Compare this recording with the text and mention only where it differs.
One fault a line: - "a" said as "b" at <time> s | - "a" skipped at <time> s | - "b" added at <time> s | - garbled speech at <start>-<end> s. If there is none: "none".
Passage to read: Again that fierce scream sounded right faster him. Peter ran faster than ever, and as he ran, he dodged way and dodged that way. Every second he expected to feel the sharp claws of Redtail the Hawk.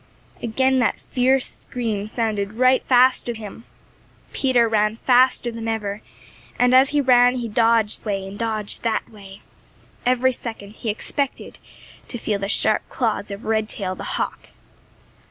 none